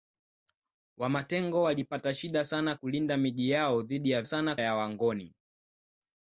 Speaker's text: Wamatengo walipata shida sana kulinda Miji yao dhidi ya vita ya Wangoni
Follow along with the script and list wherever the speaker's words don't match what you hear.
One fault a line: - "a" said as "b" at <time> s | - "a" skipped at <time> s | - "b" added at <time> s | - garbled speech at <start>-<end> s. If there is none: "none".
- "vita" said as "sana" at 4.3 s